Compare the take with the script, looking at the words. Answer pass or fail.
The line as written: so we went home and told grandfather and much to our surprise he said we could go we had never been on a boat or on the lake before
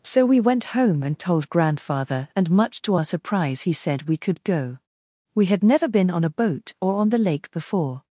pass